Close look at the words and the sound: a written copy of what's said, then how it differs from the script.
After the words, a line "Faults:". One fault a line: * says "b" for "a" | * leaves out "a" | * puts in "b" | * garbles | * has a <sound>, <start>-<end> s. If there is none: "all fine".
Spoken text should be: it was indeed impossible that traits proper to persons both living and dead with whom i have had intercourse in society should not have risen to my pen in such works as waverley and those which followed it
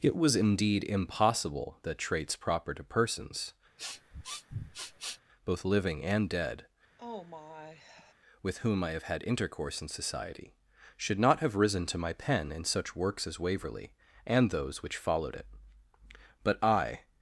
it was indeed impossible that traits proper to persons both living and dead with whom i have had intercourse in society should not have risen to my pen in such works as waverley and those which followed it but i
Faults:
* has a sniff, 3.8-5.2 s
* has a sigh, 7.0-8.1 s
* puts in "but i"